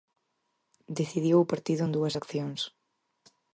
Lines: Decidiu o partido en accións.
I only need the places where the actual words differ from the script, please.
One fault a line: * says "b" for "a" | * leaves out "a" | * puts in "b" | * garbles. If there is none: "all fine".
* puts in "dúas"